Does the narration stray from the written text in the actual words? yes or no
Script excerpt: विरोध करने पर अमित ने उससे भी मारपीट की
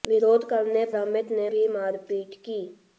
yes